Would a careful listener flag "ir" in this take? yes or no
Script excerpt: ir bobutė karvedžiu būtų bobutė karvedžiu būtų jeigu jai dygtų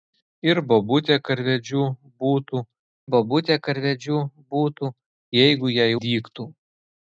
no